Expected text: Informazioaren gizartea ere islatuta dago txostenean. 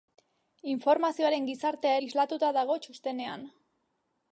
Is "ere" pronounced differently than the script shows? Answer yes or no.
yes